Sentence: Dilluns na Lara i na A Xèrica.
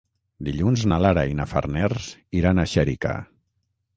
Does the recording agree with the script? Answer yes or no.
no